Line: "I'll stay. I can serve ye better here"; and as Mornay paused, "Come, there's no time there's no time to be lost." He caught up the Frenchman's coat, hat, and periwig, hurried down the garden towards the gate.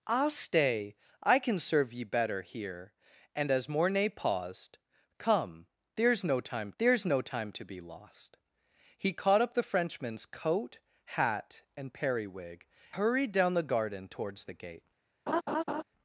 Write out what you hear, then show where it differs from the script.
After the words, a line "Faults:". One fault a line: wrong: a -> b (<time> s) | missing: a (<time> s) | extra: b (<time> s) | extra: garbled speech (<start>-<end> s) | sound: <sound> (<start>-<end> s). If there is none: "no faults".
"I'll stay. I can serve ye better here"; and as Mornay paused, "Come, there's no time there's no time to be lost." He caught up the Frenchman's coat, hat, and periwig, hurried down the garden towards the gate.
Faults:
sound: laugh (15.3-15.8 s)